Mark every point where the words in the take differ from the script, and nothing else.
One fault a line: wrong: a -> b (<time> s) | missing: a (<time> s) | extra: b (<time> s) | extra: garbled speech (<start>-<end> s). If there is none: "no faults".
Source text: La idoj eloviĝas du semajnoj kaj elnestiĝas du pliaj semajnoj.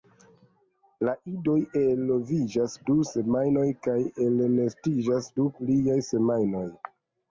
no faults